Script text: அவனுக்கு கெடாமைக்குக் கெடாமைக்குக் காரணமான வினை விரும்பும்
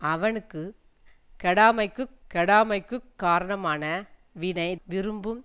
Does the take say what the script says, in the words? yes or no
yes